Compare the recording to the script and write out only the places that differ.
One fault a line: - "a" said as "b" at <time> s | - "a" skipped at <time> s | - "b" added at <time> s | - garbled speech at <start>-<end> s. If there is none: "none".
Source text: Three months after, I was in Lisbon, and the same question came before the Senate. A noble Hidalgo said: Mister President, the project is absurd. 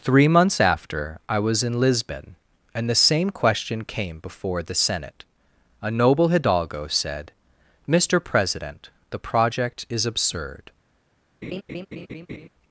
none